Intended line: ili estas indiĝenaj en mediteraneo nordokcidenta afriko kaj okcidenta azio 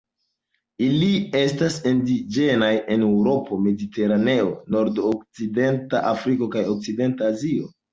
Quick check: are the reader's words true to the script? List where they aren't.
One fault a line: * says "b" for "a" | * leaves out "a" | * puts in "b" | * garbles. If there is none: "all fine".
* puts in "eŭropo"